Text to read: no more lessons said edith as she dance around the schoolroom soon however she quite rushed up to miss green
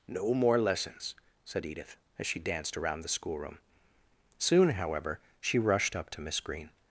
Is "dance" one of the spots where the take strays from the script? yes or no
yes